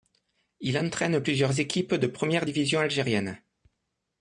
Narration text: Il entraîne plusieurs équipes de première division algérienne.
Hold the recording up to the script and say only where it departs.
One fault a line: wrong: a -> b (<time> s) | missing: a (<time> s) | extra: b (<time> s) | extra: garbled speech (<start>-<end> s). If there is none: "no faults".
no faults